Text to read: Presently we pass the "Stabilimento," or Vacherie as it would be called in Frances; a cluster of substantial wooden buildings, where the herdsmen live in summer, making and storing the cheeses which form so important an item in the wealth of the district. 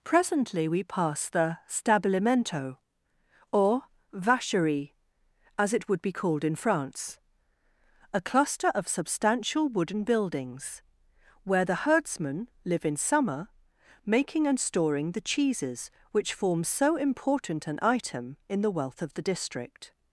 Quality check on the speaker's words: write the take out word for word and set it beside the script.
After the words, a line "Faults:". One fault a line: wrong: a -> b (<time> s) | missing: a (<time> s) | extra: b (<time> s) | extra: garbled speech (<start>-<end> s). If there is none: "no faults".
Presently we pass the "Stabilimento," or Vacherie as it would be called in France; a cluster of substantial wooden buildings, where the herdsmen live in summer, making and storing the cheeses which form so important an item in the wealth of the district.
Faults:
wrong: Frances -> France (6.6 s)